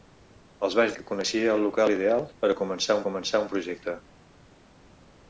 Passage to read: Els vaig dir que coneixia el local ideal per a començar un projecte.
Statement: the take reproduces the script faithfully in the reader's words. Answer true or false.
false